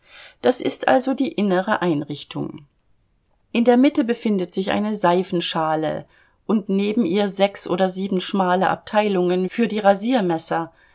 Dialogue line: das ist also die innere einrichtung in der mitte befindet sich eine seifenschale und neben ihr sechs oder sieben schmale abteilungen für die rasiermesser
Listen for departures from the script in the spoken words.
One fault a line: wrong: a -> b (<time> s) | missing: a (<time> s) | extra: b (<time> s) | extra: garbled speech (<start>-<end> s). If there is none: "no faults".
no faults